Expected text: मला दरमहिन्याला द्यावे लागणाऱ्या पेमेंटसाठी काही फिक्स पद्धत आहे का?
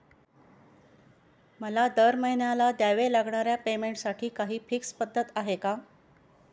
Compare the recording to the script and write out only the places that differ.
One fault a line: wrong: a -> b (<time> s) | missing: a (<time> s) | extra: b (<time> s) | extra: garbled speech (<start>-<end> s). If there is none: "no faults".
no faults